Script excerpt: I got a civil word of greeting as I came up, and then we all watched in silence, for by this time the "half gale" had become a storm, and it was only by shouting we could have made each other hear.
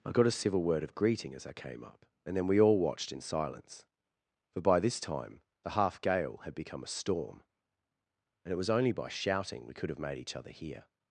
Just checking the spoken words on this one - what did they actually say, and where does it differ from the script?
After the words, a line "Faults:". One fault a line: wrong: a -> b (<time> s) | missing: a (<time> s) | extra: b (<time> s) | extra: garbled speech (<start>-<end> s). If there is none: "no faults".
I got a civil word of greeting as I came up, and then we all watched in silence, for by this time the "half gale" had become a storm, and it was only by shouting we could have made each other hear.
Faults:
no faults